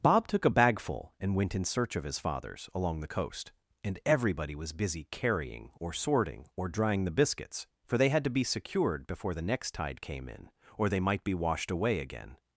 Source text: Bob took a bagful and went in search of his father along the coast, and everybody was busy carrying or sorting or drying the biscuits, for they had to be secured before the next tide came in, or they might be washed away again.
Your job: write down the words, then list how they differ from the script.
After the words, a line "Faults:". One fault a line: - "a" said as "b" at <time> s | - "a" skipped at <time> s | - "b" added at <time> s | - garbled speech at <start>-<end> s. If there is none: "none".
Bob took a bagful and went in search of his fathers along the coast, and everybody was busy carrying or sorting or drying the biscuits, for they had to be secured before the next tide came in, or they might be washed away again.
Faults:
- "father" said as "fathers" at 2.2 s